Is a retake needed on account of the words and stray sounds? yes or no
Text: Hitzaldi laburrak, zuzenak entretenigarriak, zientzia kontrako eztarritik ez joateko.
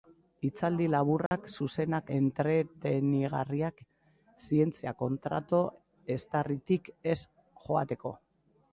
yes